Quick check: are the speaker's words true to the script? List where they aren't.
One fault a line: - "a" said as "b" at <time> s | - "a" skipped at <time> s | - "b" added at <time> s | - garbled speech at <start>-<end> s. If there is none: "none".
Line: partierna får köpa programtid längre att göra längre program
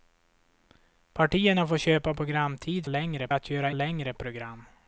none